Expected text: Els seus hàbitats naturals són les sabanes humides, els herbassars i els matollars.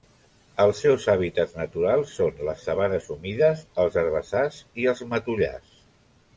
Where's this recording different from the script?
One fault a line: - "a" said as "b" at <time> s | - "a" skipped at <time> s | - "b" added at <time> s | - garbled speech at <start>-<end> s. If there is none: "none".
none